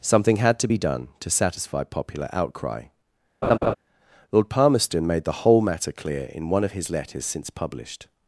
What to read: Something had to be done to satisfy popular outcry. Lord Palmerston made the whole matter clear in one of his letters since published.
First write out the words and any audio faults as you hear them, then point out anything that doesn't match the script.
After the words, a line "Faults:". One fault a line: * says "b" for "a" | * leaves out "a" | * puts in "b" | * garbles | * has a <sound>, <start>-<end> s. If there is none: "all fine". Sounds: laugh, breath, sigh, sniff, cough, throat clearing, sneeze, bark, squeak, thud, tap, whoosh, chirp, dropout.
Something had to be done to satisfy popular outcry. Lord Palmerston made the whole matter clear in one of his letters since published.
Faults:
* has a laugh, 3.4-3.7 s